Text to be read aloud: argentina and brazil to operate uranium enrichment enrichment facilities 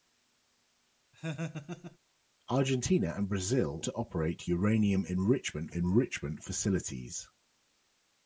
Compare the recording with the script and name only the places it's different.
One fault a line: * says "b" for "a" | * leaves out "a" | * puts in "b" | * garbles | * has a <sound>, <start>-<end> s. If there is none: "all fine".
* has a laugh, 1.1-2.0 s